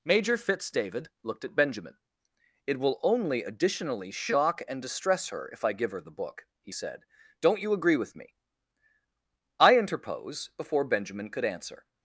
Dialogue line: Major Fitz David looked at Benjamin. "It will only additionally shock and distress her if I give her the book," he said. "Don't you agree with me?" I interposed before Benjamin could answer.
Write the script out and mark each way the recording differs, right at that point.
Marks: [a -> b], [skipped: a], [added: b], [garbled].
Major Fitz David looked at Benjamin. "It will only additionally shock and distress her if I give her the book," he said. "Don't you agree with me?" I [interposed -> interpose] before Benjamin could answer.